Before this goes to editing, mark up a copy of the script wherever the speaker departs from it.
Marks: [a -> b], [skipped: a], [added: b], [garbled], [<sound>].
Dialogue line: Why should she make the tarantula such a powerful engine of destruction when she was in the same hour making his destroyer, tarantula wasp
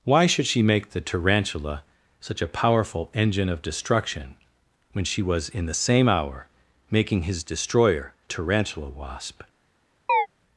Why should she make the tarantula such a powerful engine of destruction when she was in the same hour making his destroyer, tarantula wasp [chirp]